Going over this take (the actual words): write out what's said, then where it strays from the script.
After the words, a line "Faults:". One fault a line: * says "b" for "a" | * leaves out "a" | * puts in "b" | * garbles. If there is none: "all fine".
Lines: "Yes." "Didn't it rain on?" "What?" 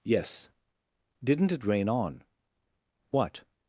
"Yes." "Didn't it rain on?" "What?"
Faults:
all fine